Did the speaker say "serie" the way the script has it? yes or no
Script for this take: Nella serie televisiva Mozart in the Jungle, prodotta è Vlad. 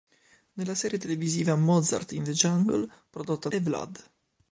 yes